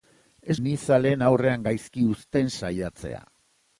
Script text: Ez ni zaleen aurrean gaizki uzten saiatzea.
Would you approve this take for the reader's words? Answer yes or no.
yes